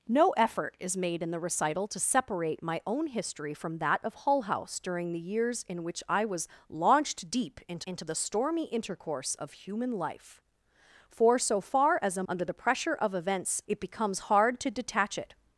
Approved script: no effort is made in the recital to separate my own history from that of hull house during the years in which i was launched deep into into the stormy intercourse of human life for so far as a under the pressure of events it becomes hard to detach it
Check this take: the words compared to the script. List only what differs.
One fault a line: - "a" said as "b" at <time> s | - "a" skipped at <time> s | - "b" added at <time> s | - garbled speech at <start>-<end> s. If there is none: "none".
none